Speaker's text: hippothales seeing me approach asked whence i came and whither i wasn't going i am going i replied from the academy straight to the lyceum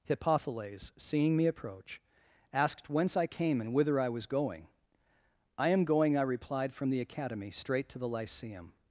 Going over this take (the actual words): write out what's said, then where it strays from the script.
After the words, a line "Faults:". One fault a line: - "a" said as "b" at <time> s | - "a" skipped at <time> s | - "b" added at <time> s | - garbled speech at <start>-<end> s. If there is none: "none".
hippothales seeing me approach asked whence i came and whither i was going i am going i replied from the academy straight to the lyceum
Faults:
- "wasn't" said as "was" at 4.1 s